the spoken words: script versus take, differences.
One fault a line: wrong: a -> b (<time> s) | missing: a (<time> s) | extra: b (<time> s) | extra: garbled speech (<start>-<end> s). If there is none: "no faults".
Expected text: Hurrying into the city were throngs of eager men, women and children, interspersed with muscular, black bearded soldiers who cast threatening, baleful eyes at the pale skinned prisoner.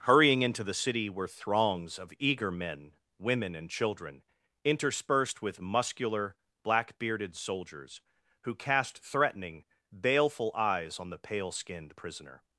wrong: at -> on (11.0 s)